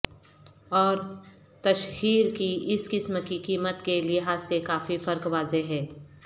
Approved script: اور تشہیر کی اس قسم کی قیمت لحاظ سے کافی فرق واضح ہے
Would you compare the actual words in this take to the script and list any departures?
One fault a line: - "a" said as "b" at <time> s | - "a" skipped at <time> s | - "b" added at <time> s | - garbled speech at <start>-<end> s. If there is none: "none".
- "کے" added at 3.8 s